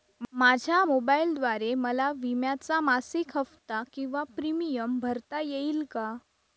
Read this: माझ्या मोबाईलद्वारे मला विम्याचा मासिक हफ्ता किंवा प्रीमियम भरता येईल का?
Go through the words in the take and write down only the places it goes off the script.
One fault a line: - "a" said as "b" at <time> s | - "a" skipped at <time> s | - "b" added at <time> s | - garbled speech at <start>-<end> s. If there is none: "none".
none